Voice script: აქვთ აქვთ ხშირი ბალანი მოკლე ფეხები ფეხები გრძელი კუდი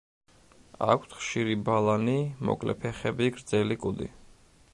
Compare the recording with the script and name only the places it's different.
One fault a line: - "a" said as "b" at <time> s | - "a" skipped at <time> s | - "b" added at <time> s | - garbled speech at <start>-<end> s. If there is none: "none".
- "აქვთ" skipped at 1.1 s
- "ფეხები" skipped at 3.3 s